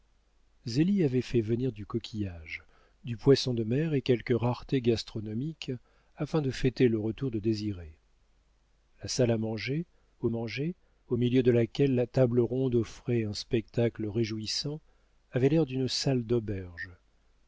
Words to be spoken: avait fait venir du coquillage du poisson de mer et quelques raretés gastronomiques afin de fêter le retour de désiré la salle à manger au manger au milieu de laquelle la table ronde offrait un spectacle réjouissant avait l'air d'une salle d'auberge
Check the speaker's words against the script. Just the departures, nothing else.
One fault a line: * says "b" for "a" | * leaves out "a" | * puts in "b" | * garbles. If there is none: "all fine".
all fine